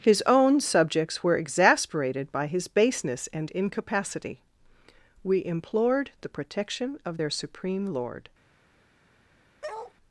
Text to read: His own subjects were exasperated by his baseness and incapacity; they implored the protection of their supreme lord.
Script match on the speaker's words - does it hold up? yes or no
no